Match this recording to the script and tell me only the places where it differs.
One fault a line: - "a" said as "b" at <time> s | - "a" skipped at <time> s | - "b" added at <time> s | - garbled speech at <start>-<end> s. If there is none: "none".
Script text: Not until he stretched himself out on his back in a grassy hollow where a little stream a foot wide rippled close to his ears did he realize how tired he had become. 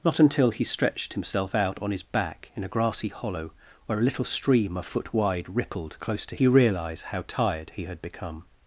- "his ears did" skipped at 6.3 s